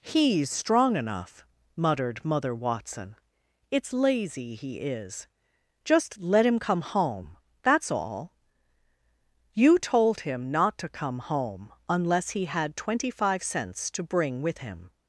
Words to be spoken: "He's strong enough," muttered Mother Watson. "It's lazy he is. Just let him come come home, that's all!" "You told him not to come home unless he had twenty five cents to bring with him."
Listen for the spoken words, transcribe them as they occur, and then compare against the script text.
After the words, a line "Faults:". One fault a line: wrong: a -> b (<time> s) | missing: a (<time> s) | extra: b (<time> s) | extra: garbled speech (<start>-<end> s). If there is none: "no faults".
"He's strong enough," muttered Mother Watson. "It's lazy he is. Just let him come home, that's all!" "You told him not to come home unless he had twenty five cents to bring with him."
Faults:
missing: come (6.8 s)